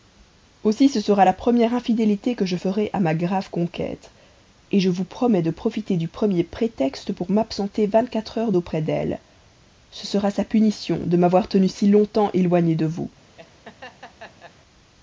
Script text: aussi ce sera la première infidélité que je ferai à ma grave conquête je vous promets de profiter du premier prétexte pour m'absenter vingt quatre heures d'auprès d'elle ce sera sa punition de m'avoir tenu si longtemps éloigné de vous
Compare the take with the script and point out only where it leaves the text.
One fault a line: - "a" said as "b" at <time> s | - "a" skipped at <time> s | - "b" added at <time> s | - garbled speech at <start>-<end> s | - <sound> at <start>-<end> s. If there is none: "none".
- laugh at 13.4-14.6 s